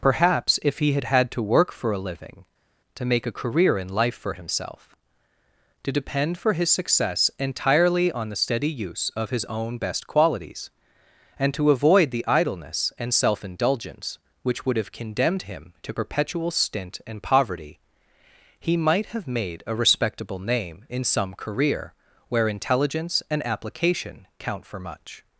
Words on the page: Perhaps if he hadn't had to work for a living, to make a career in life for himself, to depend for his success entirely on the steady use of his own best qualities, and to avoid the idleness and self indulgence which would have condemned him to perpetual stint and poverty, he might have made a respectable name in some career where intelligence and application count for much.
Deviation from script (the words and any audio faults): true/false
true